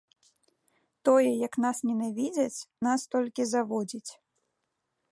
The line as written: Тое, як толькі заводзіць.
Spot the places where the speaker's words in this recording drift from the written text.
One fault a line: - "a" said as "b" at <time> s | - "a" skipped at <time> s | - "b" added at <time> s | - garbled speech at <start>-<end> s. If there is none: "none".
- "нас ненавідзяць нас" added at 1.6 s